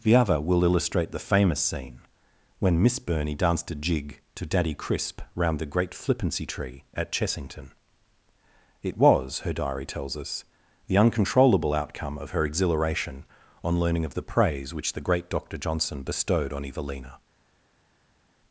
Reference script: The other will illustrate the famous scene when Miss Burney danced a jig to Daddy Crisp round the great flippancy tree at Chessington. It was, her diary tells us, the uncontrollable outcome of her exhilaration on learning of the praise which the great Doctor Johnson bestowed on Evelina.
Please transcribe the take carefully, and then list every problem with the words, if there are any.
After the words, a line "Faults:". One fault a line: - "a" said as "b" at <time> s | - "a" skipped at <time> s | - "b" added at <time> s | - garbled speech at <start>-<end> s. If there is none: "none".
The other will illustrate the famous scene when Miss Burney danced a jig to Daddy Crisp round the great flippancy tree at Chessington. It was, her diary tells us, the uncontrollable outcome of her exhilaration on learning of the praise which the great Doctor Johnson bestowed on Evelina.
Faults:
none